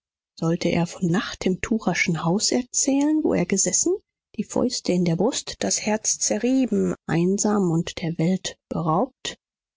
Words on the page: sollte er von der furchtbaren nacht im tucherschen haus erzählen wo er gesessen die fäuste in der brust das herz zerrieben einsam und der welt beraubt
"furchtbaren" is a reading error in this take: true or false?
true